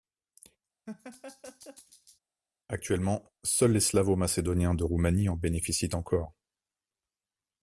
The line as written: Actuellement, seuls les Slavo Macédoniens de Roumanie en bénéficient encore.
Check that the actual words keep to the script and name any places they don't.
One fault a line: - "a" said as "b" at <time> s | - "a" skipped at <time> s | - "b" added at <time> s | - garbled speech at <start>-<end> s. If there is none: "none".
none